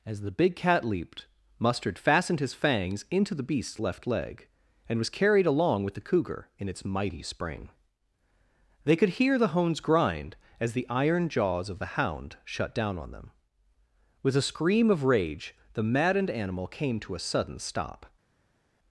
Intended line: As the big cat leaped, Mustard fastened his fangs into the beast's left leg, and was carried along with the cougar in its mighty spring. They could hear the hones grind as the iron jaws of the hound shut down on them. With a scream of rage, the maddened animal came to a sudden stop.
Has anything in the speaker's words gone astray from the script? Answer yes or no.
no